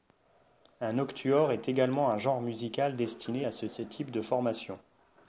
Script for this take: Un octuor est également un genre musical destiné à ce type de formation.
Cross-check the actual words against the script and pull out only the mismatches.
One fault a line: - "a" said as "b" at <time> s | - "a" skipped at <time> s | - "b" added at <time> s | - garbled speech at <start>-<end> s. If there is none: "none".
- "ce" added at 3.7 s